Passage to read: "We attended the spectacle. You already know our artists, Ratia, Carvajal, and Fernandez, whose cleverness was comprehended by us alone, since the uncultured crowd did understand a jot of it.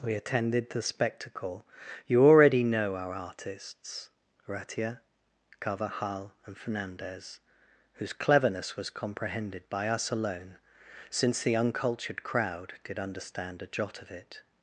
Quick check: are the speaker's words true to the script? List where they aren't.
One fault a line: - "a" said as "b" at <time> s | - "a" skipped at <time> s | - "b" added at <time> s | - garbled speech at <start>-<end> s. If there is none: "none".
none